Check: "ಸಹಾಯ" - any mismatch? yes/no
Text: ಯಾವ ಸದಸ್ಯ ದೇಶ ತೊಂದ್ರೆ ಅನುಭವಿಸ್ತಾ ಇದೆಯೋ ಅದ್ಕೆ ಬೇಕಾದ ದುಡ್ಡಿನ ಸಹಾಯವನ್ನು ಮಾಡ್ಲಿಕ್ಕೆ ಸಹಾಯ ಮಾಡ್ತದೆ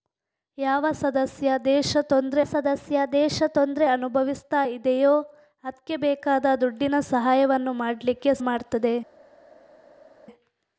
yes